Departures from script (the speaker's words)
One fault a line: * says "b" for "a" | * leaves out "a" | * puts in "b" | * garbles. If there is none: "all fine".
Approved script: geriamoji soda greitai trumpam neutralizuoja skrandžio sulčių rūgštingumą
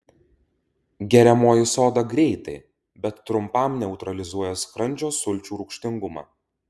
* puts in "bet"